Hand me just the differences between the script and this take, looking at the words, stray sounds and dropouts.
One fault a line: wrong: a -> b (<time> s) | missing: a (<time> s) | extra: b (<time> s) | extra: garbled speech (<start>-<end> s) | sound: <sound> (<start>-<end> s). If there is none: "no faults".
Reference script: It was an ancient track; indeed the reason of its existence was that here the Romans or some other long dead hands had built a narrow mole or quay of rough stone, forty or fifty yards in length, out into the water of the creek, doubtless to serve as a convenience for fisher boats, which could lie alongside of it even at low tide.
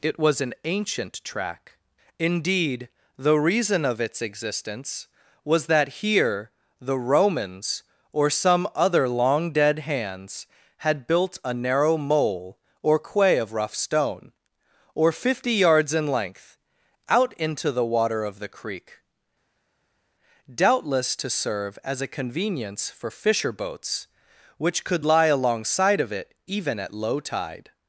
missing: forty (14.3 s)